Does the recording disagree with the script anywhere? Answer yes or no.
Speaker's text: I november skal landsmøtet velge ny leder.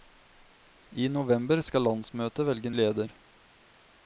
yes